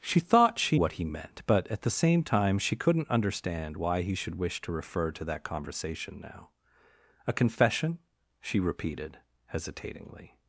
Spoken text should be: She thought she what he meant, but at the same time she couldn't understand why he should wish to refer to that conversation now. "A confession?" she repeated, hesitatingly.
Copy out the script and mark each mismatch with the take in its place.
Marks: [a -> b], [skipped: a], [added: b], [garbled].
She thought she what he meant, but at the same time she couldn't understand why he should wish to refer to that conversation now. "A confession?" she repeated, hesitatingly.